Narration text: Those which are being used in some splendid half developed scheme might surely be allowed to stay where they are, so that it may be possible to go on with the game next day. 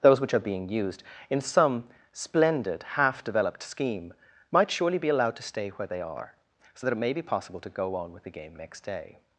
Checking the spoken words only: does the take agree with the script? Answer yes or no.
yes